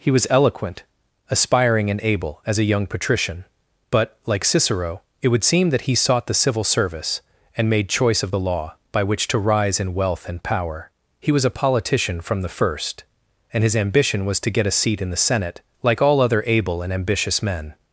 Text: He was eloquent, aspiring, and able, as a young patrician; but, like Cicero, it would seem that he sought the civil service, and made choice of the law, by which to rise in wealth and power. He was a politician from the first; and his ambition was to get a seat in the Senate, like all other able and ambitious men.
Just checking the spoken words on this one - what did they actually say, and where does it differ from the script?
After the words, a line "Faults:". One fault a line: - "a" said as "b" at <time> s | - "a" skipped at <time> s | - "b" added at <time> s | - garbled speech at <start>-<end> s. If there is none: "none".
He was eloquent, aspiring, and able, as a young patrician; but, like Cicero, it would seem that he sought the civil service, and made choice of the law, by which to rise in wealth and power. He was a politician from the first; and his ambition was to get a seat in the Senate, like all other able and ambitious men.
Faults:
none